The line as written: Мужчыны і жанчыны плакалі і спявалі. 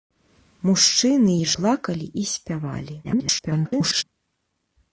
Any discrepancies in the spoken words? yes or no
yes